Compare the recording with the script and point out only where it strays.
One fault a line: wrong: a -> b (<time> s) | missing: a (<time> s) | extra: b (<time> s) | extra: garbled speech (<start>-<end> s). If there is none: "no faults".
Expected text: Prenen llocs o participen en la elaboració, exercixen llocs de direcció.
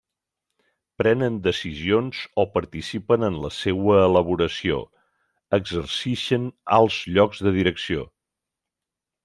wrong: llocs -> decisions (1.5 s)
extra: seua (3.6 s)
extra: alts (6.8 s)